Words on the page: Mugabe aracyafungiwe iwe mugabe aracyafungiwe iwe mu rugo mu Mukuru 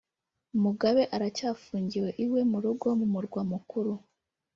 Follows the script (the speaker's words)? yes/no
no